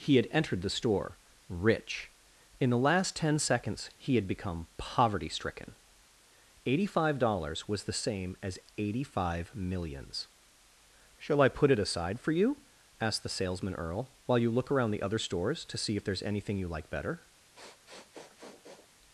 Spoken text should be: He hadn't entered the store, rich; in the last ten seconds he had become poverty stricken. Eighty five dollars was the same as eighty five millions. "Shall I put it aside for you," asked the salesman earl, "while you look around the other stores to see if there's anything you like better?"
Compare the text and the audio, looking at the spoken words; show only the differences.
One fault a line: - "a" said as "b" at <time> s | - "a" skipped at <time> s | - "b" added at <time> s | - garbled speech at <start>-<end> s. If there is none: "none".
- "hadn't" said as "had" at 0.1 s